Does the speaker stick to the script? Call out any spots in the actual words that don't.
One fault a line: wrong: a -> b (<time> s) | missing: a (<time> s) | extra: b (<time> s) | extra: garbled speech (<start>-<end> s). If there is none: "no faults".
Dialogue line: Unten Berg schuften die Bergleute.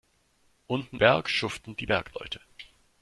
no faults